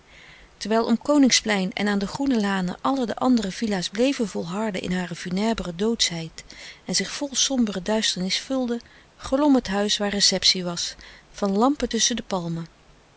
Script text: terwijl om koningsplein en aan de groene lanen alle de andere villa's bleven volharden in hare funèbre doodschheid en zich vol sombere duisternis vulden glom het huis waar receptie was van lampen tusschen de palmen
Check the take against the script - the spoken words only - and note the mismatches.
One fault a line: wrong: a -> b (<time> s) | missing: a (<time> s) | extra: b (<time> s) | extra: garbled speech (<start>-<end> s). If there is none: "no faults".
no faults